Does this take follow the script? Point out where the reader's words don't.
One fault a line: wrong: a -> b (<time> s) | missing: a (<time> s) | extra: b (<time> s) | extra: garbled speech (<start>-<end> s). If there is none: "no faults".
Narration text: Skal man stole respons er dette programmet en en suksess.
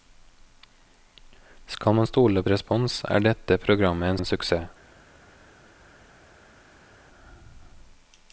no faults